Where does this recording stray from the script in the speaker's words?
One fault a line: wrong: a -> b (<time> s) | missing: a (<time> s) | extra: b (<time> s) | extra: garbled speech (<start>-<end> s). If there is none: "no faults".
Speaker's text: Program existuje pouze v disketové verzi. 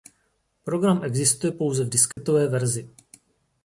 no faults